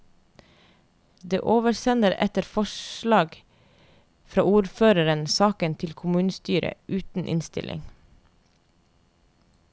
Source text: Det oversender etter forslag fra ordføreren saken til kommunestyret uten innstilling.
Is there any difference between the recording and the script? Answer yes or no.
no